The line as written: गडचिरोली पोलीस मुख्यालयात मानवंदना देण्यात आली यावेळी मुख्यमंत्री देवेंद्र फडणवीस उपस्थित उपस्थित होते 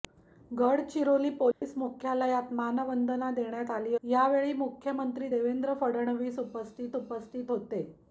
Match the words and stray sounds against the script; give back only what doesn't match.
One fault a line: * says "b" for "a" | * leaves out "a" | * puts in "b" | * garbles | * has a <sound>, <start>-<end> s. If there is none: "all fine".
* has a dropout, 1.5-1.6 s